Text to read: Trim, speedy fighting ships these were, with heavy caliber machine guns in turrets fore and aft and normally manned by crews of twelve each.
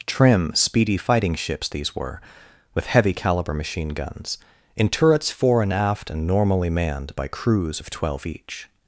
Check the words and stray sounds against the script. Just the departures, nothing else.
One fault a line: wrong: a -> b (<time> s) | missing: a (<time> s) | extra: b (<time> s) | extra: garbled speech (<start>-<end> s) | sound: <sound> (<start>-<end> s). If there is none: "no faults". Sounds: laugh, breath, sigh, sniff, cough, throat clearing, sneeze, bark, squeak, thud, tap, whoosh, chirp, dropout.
no faults